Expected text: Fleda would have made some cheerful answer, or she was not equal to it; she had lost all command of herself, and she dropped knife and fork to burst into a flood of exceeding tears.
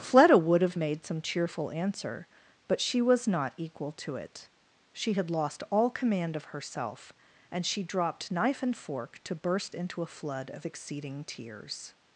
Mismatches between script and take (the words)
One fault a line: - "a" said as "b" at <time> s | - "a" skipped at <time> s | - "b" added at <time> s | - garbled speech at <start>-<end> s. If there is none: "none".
- "or" said as "but" at 2.7 s